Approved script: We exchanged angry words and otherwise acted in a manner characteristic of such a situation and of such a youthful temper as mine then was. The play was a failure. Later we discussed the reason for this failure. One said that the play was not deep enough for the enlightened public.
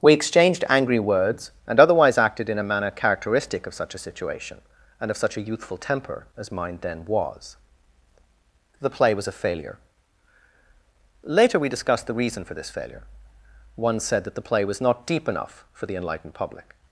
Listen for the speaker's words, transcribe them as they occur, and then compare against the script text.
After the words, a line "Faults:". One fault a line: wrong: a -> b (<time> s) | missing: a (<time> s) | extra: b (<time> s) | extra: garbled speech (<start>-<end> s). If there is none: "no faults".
We exchanged angry words and otherwise acted in a manner characteristic of such a situation and of such a youthful temper as mine then was. The play was a failure. Later we discussed the reason for this failure. One said that the play was not deep enough for the enlightened public.
Faults:
no faults